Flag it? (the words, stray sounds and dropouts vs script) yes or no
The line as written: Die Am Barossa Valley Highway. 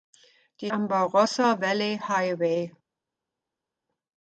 no